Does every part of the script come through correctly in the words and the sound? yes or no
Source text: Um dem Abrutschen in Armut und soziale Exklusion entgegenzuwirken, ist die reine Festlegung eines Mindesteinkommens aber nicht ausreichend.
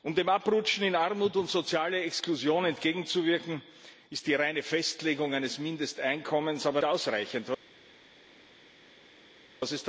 no